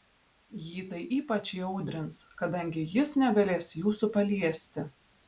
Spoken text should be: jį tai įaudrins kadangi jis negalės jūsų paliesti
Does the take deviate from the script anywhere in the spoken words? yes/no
yes